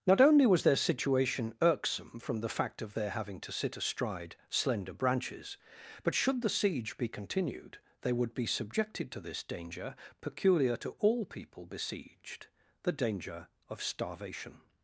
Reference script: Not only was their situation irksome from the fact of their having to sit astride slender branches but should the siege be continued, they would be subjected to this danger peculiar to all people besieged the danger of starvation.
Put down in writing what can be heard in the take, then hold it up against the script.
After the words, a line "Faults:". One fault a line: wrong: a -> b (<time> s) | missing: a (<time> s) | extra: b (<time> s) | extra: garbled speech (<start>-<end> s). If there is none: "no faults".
Not only was their situation irksome from the fact of their having to sit astride slender branches but should the siege be continued, they would be subjected to this danger peculiar to all people besieged the danger of starvation.
Faults:
no faults